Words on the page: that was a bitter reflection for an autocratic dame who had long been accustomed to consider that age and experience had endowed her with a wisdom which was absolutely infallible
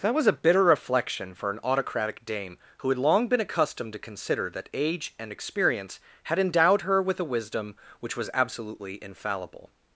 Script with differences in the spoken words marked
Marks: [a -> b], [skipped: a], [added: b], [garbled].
that was a bitter reflection for an autocratic dame who had long been accustomed to consider that age and experience had endowed her with a wisdom which was absolutely infallible